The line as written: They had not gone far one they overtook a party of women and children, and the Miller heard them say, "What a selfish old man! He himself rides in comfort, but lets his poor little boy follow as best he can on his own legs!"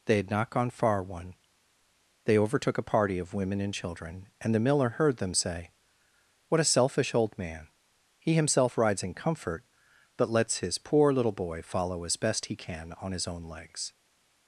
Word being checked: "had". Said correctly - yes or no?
yes